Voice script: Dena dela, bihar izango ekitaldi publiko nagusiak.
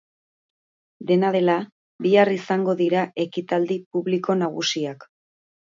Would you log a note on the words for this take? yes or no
yes